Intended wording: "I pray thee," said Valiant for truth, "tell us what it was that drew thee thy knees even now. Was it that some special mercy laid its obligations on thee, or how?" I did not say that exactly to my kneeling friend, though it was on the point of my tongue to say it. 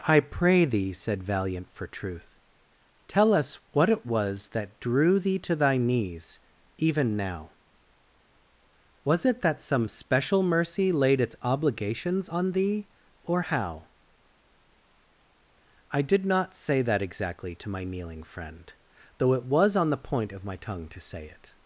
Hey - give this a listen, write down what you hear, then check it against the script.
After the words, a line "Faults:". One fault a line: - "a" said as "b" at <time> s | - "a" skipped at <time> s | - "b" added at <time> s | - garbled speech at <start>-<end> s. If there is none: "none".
"I pray thee," said Valiant for truth, "tell us what it was that drew thee to thy knees even now. Was it that some special mercy laid its obligations on thee, or how?" I did not say that exactly to my kneeling friend, though it was on the point of my tongue to say it.
Faults:
- "to" added at 5.4 s